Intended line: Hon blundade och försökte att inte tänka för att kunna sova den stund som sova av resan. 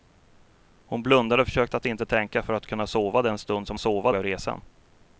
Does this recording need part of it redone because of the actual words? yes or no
no